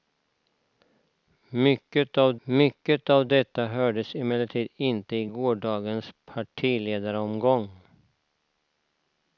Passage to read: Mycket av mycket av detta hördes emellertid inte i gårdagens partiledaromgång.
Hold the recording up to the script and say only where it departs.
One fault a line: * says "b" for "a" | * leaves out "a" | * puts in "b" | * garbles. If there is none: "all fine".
all fine